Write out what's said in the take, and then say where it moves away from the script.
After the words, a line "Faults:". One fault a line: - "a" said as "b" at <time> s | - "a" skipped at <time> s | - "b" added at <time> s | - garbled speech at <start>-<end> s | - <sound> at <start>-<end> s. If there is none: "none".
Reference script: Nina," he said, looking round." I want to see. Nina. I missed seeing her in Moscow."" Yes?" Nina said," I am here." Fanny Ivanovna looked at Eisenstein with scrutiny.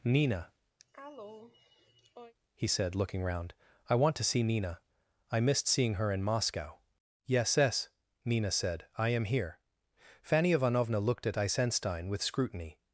Nina," he said, looking round." I want to see. Nina. I missed seeing her in Moscow."" Yes?" yes Nina said," I am here." Fanny Ivanovna looked at Eisenstein with scrutiny.
Faults:
- cough at 0.8-2.3 s
- "yes" added at 7.6 s